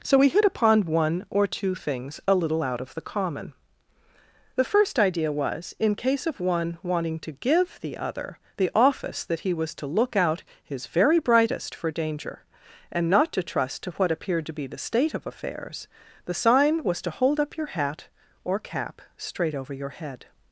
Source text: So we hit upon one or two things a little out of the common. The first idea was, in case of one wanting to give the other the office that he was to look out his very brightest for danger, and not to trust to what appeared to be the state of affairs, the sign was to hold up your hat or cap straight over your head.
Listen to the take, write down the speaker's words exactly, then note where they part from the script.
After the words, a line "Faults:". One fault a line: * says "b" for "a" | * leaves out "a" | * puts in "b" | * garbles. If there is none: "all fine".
So we hit upon one or two things a little out of the common. The first idea was, in case of one wanting to give the other the office that he was to look out his very brightest for danger, and not to trust to what appeared to be the state of affairs, the sign was to hold up your hat or cap straight over your head.
Faults:
all fine